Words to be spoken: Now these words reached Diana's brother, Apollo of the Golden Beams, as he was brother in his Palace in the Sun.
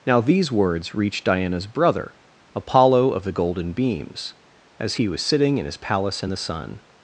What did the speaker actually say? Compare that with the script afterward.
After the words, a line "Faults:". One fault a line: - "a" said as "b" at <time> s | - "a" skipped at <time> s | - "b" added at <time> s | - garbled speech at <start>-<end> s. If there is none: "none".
Now these words reached Diana's brother, Apollo of the Golden Beams, as he was sitting in his Palace in the Sun.
Faults:
- "brother" said as "sitting" at 5.2 s